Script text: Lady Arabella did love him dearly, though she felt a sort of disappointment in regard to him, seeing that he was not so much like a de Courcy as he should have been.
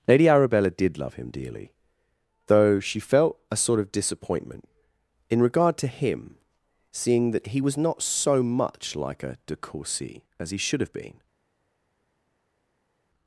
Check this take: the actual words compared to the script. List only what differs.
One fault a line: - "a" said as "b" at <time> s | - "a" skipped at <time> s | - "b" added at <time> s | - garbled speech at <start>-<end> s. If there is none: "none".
none